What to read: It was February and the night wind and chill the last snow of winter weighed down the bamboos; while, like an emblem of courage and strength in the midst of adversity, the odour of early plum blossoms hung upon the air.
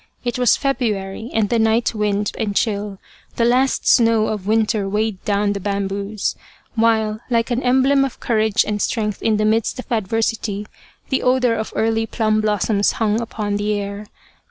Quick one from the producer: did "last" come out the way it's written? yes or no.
yes